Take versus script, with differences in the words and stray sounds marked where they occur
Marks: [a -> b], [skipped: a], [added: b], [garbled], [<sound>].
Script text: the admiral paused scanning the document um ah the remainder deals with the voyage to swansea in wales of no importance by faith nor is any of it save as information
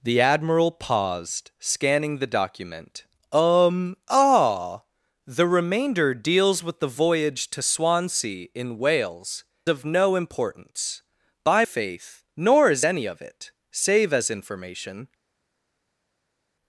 the admiral paused scanning the document um ah the remainder deals with the voyage to swansea in wales of no importance by faith nor is any of it save as information